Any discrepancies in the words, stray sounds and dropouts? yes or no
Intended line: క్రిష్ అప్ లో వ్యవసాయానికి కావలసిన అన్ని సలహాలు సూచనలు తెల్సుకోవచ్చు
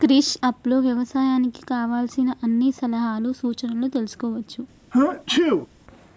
yes